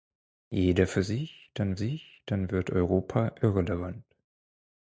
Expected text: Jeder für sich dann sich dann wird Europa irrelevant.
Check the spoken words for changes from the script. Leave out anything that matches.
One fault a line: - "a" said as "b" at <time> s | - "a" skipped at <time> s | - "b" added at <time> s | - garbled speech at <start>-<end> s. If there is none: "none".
none